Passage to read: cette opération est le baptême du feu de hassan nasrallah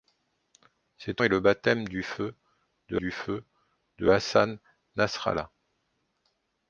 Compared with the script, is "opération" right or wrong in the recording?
wrong